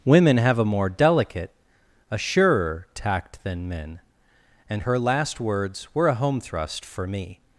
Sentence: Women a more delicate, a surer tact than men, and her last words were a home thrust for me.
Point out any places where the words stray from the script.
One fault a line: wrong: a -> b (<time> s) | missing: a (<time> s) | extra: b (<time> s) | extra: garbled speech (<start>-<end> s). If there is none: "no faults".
extra: have (0.4 s)